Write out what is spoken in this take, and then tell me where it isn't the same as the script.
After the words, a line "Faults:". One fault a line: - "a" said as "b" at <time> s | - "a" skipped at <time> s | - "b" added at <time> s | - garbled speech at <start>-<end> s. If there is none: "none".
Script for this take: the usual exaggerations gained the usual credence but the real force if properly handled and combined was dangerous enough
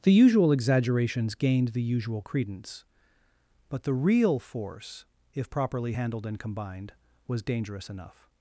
the usual exaggerations gained the usual credence but the real force if properly handled and combined was dangerous enough
Faults:
none